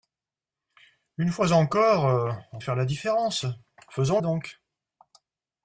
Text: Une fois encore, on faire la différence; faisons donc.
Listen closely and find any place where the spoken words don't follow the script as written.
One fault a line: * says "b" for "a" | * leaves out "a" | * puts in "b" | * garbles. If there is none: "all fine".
all fine